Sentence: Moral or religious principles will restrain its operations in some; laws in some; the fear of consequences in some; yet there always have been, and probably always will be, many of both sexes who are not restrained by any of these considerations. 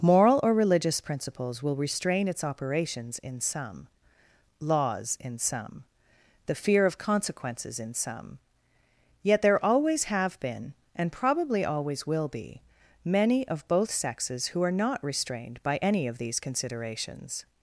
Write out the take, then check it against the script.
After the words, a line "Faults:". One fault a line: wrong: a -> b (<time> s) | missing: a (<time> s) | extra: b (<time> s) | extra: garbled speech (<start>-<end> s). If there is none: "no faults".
Moral or religious principles will restrain its operations in some; laws in some; the fear of consequences in some; yet there always have been, and probably always will be, many of both sexes who are not restrained by any of these considerations.
Faults:
no faults